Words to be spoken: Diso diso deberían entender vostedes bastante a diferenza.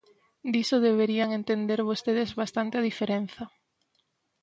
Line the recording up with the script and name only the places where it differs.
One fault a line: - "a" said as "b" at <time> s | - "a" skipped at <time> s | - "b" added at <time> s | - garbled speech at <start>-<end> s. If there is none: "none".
- "diso" skipped at 0.8 s